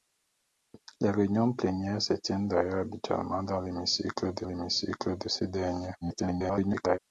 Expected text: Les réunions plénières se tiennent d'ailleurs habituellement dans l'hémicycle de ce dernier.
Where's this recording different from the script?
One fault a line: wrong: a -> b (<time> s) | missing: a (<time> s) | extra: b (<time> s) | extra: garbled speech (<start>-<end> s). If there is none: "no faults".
extra: l'hémicycle de (4.4 s)
extra: garbled speech (6.0-7.0 s)